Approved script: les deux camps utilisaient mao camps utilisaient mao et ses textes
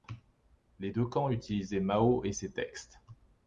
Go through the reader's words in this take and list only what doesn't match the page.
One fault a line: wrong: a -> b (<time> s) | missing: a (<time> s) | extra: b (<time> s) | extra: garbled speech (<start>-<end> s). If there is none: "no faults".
missing: camps utilisaient mao (2.2 s)